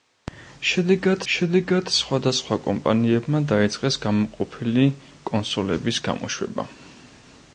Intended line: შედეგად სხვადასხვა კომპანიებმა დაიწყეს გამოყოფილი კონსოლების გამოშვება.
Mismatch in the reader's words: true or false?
true